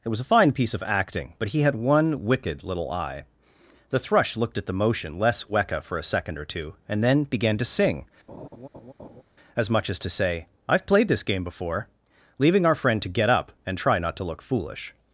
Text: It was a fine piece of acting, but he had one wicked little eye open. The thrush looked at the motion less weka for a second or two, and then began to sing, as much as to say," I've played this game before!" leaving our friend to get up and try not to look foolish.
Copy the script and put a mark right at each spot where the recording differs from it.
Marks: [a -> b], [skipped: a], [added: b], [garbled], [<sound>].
It was a fine piece of acting, but he had one wicked little eye [skipped: open.] The thrush looked at the motion less weka for a second or two, and then began to sing, [laugh] as much as to say," I've played this game before!" leaving our friend to get up and try not to look foolish.